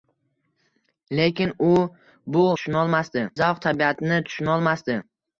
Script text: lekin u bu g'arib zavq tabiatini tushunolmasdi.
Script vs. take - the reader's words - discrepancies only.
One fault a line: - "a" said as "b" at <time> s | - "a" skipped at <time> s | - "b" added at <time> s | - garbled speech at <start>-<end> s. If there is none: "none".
- "g'arib" said as "tushunolmasdi" at 2.6 s